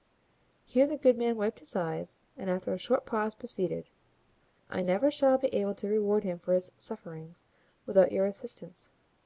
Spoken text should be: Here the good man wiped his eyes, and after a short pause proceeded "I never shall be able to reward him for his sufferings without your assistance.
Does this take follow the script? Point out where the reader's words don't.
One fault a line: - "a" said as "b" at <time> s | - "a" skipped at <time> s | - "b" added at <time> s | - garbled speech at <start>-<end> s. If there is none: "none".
none